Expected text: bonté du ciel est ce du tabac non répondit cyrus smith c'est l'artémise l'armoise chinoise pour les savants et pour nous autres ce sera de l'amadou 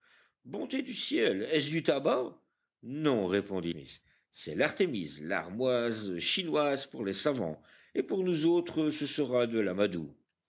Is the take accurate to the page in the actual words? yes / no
no